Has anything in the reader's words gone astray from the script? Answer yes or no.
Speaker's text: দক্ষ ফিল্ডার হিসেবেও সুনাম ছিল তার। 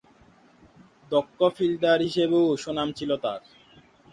no